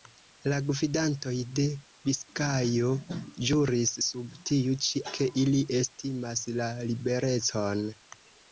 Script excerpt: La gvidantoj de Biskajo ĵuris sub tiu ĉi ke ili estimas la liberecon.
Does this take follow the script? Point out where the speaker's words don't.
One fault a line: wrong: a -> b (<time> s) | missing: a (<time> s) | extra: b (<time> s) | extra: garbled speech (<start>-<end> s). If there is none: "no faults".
no faults